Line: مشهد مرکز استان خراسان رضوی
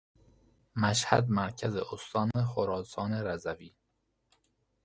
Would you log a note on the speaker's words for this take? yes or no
no